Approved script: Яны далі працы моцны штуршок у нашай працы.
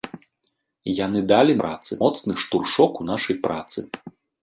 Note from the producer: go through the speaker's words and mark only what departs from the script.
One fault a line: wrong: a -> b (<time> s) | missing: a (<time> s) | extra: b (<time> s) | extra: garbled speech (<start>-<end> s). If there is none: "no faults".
no faults